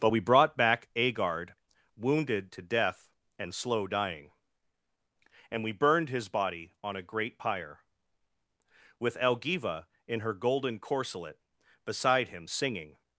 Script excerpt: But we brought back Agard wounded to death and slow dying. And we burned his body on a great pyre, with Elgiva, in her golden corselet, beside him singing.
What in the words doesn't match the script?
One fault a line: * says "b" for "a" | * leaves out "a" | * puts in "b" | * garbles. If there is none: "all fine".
all fine